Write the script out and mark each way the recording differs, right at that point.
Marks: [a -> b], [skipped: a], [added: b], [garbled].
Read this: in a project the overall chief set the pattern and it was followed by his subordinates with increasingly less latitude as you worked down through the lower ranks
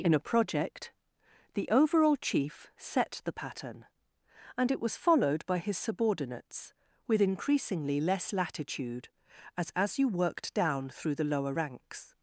in a project the overall chief set the pattern and it was followed by his subordinates with increasingly less latitude as [added: as] you worked down through the lower ranks